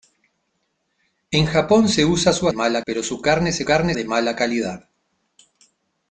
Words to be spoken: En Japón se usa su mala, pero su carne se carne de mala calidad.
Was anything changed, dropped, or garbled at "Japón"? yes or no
no